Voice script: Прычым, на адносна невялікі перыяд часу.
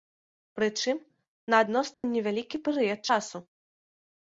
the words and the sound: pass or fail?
fail